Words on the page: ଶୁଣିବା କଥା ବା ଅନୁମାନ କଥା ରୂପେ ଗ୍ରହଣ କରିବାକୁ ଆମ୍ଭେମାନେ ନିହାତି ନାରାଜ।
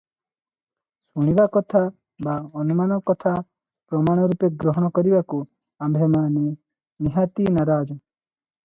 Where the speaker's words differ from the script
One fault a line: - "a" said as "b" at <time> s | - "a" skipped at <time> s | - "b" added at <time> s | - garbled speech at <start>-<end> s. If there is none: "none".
- "ପ୍ରମାଣ" added at 3.9 s